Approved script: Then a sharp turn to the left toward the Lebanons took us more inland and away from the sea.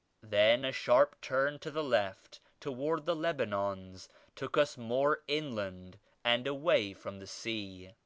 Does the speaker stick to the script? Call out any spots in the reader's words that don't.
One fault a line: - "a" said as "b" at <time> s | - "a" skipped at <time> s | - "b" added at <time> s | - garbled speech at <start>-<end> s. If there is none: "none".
none